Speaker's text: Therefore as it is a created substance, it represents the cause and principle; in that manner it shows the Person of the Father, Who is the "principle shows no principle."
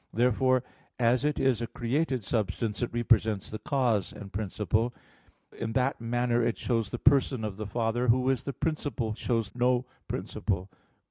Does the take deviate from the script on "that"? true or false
false